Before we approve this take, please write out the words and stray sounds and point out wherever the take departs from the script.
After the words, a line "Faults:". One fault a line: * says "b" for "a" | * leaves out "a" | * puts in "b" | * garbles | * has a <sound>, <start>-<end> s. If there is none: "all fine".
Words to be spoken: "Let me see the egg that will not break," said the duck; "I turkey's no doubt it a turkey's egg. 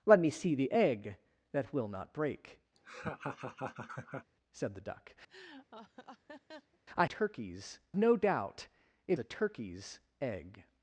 "Let me see the egg that will not break," said the duck; "I turkey's no doubt it a turkey's egg.
Faults:
* has a laugh, 2.8-4.3 s
* has a laugh, 5.3-6.8 s